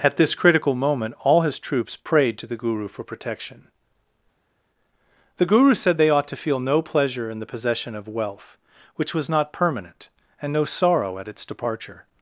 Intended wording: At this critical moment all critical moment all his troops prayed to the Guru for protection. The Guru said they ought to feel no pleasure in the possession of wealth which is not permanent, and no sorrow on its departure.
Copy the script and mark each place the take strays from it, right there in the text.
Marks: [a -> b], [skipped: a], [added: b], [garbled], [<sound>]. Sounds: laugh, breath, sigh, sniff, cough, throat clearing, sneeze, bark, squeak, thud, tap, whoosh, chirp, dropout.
At this critical moment all [skipped: critical moment all] his troops prayed to the Guru for protection. The Guru said they ought to feel no pleasure in the possession of wealth which [is -> was] not permanent, and no sorrow [on -> at] its departure.